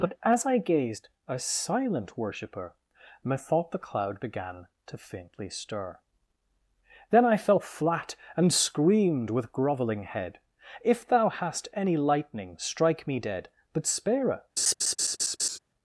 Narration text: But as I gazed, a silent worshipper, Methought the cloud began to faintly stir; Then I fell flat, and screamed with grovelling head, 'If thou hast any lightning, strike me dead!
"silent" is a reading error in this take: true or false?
false